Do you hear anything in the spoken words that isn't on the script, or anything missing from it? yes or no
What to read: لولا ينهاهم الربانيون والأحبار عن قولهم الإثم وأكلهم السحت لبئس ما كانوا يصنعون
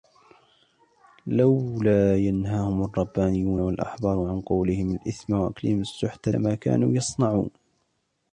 yes